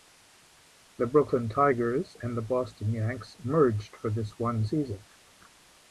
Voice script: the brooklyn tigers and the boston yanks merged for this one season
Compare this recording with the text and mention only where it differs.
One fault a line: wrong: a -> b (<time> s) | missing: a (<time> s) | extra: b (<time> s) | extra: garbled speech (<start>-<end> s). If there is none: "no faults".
no faults